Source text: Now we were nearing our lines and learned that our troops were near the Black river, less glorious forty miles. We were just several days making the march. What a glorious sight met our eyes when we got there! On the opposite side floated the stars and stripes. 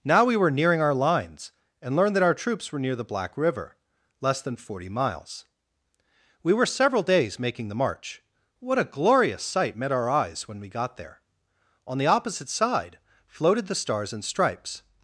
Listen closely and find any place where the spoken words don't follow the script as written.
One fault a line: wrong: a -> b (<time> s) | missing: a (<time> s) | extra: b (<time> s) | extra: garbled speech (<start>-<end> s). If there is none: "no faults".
wrong: glorious -> than (4.4 s)
missing: just (6.7 s)